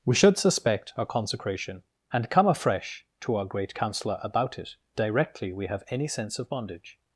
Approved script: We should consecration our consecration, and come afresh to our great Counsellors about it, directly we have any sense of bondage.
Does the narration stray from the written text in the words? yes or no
yes